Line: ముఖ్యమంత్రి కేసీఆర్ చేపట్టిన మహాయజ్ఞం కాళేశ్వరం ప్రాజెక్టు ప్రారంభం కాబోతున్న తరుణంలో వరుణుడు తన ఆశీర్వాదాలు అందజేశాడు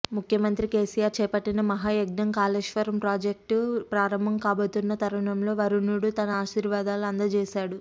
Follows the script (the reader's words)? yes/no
yes